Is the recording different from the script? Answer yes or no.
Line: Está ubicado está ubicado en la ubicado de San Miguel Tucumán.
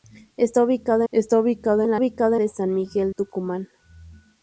no